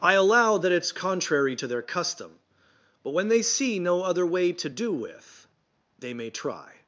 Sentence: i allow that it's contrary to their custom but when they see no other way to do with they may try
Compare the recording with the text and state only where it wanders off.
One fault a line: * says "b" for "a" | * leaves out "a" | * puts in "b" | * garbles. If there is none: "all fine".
all fine